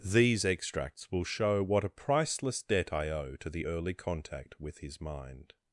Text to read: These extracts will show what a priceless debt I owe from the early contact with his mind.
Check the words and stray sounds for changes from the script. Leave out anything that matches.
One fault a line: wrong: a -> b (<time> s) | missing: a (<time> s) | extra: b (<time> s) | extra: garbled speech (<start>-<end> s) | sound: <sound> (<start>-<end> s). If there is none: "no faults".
wrong: from -> to (3.4 s)